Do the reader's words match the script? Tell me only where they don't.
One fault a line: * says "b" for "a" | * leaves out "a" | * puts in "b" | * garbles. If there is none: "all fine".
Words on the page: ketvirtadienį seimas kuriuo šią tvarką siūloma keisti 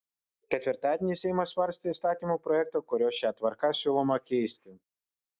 * puts in "svarstė įstatymo projektą"